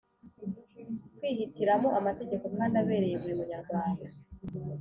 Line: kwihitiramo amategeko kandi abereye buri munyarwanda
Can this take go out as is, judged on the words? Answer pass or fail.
pass